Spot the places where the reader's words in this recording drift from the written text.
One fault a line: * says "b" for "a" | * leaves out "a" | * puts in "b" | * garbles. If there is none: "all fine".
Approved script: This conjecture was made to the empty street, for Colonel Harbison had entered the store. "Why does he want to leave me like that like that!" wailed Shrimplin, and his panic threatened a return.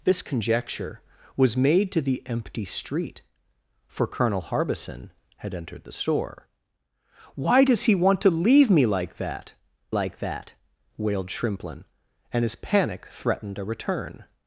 all fine